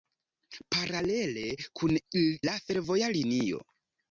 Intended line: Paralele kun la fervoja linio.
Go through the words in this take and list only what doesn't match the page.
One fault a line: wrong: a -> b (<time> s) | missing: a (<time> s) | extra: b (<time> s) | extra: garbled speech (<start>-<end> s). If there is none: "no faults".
no faults